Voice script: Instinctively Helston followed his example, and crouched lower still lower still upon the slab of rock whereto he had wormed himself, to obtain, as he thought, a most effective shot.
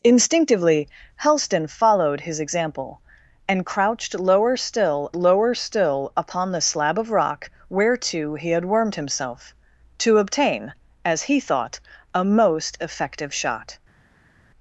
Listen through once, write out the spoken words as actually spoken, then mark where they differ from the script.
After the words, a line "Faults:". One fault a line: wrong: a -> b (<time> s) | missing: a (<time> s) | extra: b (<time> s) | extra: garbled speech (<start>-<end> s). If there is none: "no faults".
Instinctively Helston followed his example, and crouched lower still lower still upon the slab of rock whereto he had wormed himself, to obtain, as he thought, a most effective shot.
Faults:
no faults